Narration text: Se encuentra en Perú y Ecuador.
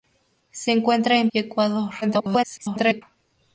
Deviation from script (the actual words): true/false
true